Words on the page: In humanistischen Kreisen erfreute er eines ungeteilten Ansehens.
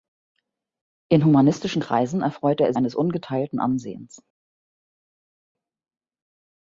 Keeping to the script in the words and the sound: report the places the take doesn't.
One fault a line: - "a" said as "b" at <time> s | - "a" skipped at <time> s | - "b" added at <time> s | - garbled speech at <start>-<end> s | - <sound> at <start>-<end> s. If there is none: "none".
none